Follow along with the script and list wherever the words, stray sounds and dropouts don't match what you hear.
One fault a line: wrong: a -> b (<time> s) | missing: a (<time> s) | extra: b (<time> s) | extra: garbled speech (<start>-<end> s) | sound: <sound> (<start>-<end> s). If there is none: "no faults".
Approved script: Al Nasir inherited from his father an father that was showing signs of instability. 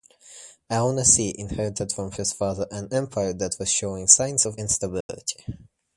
wrong: father -> empire (2.9 s)
sound: dropout (5.0-5.1 s)